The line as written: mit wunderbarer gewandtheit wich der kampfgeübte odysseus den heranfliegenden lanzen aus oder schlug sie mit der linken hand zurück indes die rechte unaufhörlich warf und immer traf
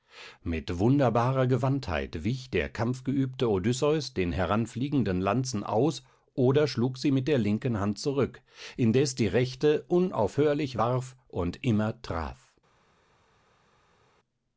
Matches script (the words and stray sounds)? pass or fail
pass